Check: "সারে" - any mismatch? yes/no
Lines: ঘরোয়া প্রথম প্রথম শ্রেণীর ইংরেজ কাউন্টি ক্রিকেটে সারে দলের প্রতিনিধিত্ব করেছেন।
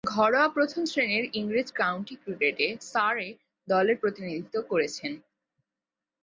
no